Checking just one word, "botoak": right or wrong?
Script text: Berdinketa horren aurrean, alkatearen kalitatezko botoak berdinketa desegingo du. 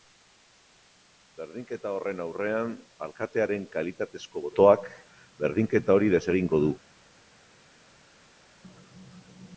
right